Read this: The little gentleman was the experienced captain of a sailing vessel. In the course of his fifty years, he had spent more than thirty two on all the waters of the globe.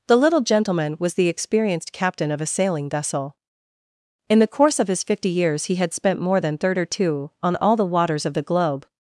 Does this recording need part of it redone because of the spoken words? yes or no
no